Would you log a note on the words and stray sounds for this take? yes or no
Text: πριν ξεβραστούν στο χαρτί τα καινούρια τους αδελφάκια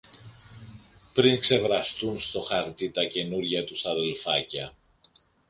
no